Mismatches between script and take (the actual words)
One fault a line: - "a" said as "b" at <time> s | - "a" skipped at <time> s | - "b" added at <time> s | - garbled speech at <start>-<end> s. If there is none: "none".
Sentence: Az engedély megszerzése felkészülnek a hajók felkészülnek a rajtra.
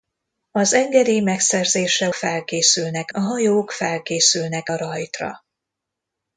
none